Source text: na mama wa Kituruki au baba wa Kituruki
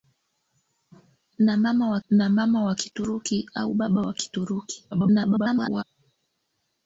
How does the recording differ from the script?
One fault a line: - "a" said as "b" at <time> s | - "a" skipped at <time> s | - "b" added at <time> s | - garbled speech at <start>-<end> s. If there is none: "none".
- "na mama wa" added at 2.1 s
- garbled speech at 4.9-5.8 s